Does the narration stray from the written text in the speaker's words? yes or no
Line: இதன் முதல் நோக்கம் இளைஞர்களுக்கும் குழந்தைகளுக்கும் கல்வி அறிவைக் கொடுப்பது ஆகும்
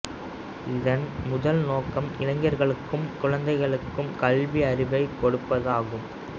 no